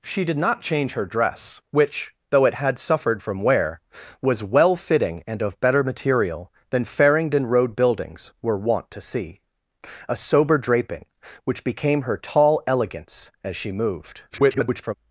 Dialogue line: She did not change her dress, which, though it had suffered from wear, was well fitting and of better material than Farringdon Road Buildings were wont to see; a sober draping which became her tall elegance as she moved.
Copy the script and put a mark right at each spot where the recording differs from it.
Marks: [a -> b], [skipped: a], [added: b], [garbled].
She did not change her dress, which, though it had suffered from wear, was well fitting and of better material than Farringdon Road Buildings were wont to see; a sober draping which became her tall elegance as she moved. [garbled]